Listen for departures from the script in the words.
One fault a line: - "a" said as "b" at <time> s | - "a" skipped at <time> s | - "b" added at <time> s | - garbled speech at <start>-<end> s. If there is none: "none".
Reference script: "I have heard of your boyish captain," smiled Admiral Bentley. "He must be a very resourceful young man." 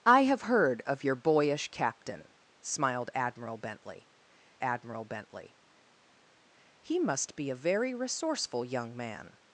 - "Admiral Bentley" added at 4.6 s